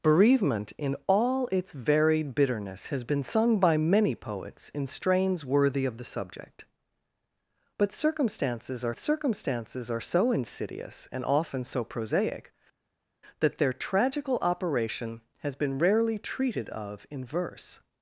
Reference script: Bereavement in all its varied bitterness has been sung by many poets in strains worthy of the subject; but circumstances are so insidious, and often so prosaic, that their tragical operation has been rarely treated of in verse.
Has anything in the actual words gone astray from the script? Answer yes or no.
yes